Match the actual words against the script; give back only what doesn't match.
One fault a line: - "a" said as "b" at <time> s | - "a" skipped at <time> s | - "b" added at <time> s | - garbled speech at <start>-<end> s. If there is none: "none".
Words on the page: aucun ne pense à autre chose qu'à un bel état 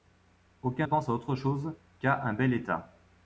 - "ne" skipped at 0.9 s